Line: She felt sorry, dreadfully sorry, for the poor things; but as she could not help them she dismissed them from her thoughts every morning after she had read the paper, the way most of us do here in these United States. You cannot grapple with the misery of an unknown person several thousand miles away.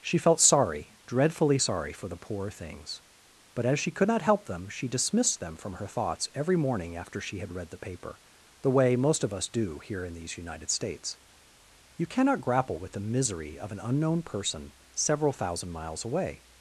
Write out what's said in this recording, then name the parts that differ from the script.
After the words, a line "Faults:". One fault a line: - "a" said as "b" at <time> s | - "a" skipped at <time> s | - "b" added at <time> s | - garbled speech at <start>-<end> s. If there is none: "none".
She felt sorry, dreadfully sorry, for the poor things; but as she could not help them she dismissed them from her thoughts every morning after she had read the paper, the way most of us do here in these United States. You cannot grapple with the misery of an unknown person several thousand miles away.
Faults:
none